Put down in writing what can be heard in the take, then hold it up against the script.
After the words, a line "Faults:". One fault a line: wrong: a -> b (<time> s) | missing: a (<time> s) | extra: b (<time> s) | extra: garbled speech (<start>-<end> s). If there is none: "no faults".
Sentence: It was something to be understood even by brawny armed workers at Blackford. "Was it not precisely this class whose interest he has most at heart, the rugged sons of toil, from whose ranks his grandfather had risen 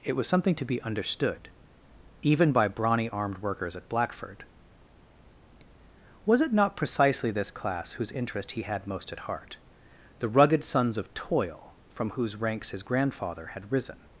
It was something to be understood even by brawny armed workers at Blackford. "Was it not precisely this class whose interest he had most at heart, the rugged sons of toil, from whose ranks his grandfather had risen
Faults:
wrong: has -> had (8.6 s)